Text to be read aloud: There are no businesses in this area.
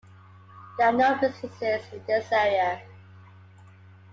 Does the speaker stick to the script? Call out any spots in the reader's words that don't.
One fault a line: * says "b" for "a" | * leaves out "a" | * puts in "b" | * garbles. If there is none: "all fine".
all fine